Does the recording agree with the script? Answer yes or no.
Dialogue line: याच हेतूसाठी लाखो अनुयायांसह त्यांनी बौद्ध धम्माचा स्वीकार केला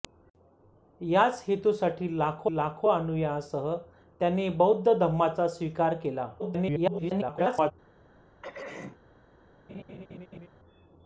no